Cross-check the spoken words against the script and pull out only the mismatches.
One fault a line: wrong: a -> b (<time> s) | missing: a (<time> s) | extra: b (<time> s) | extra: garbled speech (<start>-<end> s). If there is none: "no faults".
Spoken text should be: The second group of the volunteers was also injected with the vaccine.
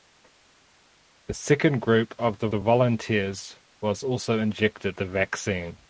extra: the (2.5 s)
missing: with (5.0 s)